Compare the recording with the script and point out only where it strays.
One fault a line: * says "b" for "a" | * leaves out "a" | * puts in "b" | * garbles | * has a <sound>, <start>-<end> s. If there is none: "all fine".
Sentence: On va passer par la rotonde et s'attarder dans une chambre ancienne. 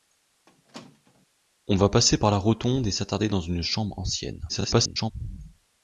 * has a squeak, 0.5-1.3 s
* garbles